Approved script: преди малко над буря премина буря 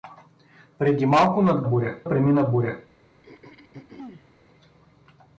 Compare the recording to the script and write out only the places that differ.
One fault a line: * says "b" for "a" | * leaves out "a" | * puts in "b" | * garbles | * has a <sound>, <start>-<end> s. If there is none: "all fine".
* has a throat clearing, 3.2-4.3 s